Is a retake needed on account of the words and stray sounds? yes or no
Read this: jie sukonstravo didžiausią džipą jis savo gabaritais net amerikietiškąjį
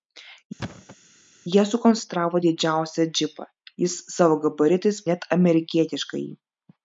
yes